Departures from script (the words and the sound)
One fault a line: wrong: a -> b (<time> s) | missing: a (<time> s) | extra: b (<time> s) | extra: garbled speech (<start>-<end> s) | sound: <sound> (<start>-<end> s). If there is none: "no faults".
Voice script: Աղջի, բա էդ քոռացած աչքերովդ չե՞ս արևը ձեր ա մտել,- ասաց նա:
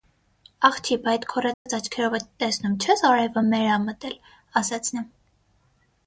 sound: dropout (1.5-1.7 s)
extra: տեսնում (2.4 s)
wrong: ձեր -> մեր (3.5 s)